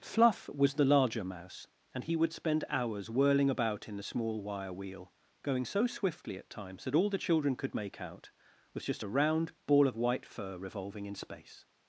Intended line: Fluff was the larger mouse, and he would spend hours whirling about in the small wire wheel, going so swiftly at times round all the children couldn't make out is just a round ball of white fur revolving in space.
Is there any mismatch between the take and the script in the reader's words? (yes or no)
yes